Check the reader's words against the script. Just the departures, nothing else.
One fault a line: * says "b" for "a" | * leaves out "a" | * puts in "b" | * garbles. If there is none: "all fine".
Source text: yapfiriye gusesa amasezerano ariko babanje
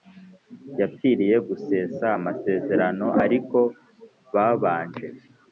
all fine